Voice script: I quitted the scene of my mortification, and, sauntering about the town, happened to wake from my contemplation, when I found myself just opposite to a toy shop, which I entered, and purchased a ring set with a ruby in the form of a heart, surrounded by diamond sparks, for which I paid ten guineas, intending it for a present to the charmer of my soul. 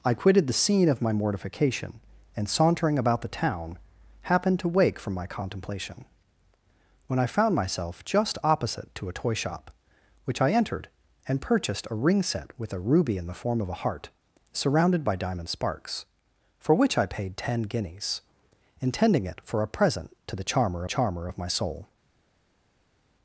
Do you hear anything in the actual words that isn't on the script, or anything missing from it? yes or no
yes